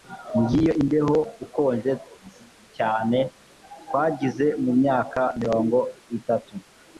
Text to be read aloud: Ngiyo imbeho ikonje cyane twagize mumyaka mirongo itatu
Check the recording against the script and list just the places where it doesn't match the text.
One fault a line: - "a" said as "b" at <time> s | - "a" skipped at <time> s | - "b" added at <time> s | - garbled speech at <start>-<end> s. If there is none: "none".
none